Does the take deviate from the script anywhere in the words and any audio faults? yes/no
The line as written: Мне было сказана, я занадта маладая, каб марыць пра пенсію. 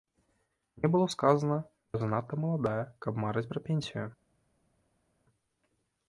no